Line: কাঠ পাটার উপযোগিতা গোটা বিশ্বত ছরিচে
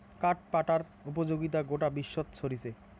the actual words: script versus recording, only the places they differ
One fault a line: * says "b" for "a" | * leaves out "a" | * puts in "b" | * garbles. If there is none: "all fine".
all fine